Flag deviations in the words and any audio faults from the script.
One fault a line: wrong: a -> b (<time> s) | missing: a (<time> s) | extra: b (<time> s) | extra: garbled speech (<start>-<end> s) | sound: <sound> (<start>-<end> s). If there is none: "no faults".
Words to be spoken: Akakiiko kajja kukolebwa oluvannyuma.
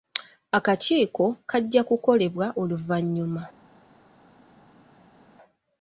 no faults